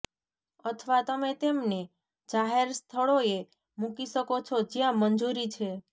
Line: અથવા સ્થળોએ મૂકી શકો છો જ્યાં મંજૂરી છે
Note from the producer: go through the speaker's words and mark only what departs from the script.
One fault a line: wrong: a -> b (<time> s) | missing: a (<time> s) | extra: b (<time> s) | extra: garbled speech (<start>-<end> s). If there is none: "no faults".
extra: તમે તેમને જાહેર (1.0 s)